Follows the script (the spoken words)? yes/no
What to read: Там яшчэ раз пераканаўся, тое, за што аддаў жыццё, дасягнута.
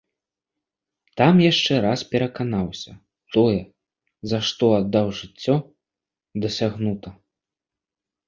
yes